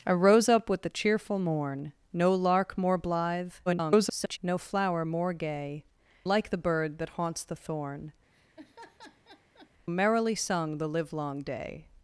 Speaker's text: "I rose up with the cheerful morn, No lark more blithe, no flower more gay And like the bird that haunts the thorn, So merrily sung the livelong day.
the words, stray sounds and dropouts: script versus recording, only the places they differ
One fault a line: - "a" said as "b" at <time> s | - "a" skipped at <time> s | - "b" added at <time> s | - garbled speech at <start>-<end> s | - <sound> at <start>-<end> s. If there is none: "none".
- garbled speech at 3.7-4.4 s
- "And" skipped at 5.8 s
- "So" skipped at 8.1 s
- laugh at 8.3-9.7 s